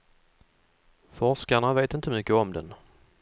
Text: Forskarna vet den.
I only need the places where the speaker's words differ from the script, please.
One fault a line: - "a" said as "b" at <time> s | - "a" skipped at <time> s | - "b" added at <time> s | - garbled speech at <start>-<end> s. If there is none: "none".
- "inte mycket om" added at 1.9 s